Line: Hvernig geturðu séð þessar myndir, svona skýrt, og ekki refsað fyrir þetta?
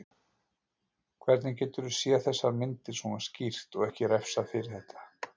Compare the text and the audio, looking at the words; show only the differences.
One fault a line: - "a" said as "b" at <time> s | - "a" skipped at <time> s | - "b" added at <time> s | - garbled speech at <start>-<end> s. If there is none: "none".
none